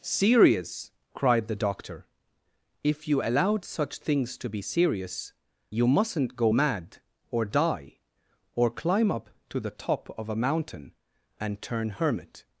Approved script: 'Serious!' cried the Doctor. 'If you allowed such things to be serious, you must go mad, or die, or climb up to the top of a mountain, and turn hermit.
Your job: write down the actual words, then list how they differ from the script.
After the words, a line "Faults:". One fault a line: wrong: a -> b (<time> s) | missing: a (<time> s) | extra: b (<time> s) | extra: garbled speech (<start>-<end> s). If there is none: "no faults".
'Serious!' cried the Doctor. 'If you allowed such things to be serious, you mustn't go mad, or die, or climb up to the top of a mountain, and turn hermit.
Faults:
wrong: must -> mustn't (5.9 s)